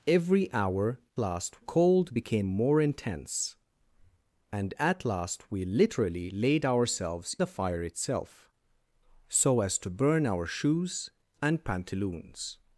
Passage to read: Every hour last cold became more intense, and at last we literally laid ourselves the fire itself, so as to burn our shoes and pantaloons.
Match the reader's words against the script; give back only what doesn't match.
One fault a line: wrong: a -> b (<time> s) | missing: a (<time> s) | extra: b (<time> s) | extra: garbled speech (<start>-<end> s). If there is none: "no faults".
no faults